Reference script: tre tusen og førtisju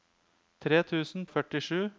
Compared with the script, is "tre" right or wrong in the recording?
right